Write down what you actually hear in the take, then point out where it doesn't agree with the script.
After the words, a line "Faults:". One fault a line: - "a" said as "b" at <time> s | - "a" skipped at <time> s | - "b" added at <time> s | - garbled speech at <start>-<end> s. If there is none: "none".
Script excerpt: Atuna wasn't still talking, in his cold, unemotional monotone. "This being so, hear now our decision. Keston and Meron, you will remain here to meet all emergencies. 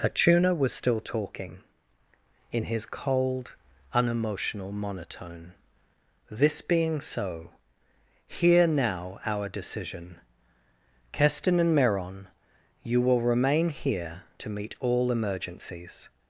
Atuna was still talking, in his cold, unemotional monotone. "This being so, hear now our decision. Keston and Meron, you will remain here to meet all emergencies.
Faults:
- "wasn't" said as "was" at 0.6 s